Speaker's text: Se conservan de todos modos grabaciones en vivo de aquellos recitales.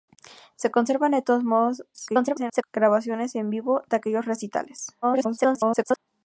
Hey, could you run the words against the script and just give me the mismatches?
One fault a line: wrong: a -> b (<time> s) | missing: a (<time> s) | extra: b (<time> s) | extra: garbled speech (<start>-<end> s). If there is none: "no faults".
extra: garbled speech (1.9-2.6 s)
extra: garbled speech (5.0-6.0 s)